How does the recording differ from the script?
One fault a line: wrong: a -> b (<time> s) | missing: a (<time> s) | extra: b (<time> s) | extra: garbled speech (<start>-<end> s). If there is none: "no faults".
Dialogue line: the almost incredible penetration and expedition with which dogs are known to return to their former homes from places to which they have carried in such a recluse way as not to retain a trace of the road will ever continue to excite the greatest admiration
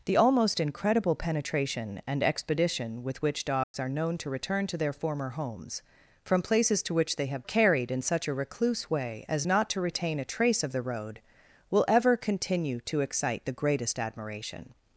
no faults